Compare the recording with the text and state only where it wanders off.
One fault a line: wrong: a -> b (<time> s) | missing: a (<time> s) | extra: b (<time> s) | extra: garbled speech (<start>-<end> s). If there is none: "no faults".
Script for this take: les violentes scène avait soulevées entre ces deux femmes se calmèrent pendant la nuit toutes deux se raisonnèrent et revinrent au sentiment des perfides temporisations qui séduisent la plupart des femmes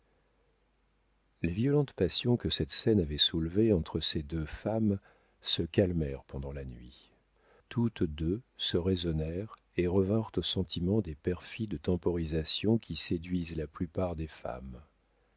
extra: passions que cette (1.9 s)